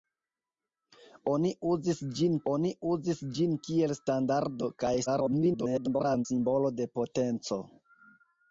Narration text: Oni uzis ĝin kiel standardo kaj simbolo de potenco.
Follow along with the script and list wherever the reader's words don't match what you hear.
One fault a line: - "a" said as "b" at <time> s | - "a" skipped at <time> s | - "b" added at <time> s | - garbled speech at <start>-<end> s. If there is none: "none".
- "oni uzis ĝin" added at 2.5 s
- garbled speech at 5.1-6.3 s